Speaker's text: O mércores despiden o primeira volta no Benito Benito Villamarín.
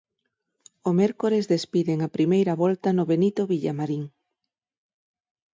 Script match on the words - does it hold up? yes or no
no